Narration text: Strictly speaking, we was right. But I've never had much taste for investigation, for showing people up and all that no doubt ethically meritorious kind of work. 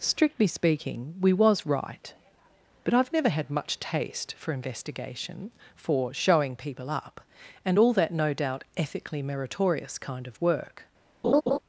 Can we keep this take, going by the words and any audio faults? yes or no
no